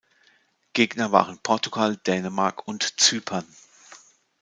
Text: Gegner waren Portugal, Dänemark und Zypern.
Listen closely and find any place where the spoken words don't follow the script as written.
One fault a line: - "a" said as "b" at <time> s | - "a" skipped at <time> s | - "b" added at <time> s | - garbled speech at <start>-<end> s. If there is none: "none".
none